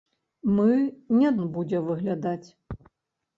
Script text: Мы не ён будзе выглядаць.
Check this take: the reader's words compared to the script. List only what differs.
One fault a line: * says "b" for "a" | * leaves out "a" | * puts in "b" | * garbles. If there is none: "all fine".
all fine